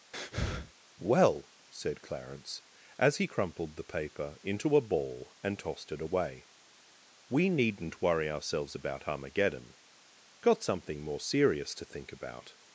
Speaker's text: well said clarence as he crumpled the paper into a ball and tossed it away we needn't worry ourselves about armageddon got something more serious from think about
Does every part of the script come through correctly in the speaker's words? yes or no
no